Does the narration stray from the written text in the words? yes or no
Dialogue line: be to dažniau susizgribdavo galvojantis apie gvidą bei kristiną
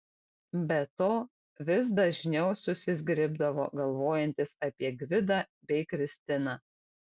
yes